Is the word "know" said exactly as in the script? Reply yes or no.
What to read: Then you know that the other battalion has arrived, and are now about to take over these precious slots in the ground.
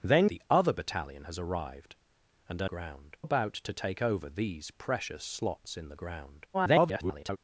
no